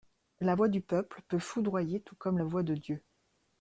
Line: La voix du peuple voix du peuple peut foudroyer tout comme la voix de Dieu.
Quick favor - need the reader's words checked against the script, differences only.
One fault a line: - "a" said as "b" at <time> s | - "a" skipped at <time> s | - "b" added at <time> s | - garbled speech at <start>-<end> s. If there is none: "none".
- "voix du peuple" skipped at 1.2 s